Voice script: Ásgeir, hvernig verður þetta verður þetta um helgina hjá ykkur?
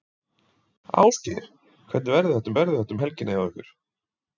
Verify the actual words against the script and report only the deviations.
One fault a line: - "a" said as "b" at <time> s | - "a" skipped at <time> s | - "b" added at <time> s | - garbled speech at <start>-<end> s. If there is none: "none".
none